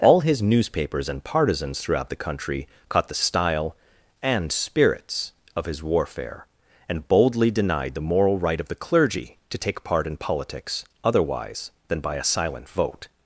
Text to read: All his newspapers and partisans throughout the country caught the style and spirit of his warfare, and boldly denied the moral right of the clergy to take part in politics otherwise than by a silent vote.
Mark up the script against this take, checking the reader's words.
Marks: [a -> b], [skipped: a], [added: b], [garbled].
All his newspapers and partisans throughout the country caught the style and [spirit -> spirits] of his warfare, and boldly denied the moral right of the clergy to take part in politics otherwise than by a silent vote.